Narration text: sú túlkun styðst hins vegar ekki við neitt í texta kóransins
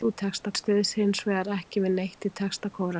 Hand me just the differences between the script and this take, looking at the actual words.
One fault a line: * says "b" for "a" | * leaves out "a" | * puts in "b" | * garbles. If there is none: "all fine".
* says "texta" for "túlkun"